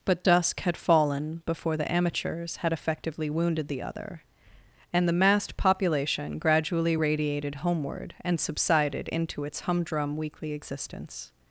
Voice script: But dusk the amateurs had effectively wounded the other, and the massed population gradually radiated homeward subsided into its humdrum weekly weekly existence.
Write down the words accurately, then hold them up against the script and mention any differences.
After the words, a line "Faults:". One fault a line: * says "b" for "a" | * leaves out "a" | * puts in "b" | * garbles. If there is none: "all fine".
But dusk had fallen before the amateurs had effectively wounded the other, and the massed population gradually radiated homeward and subsided into its humdrum weekly existence.
Faults:
* puts in "had fallen before"
* puts in "and"
* leaves out "weekly"